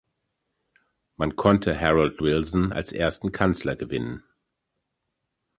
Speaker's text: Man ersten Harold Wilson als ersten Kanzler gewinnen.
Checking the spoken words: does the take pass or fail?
fail